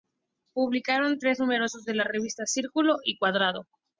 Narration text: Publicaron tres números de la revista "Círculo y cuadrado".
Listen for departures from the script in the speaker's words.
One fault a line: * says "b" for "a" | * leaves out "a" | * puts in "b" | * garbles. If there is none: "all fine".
all fine